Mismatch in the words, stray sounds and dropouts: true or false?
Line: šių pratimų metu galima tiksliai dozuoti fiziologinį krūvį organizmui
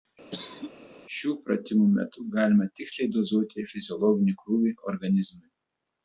true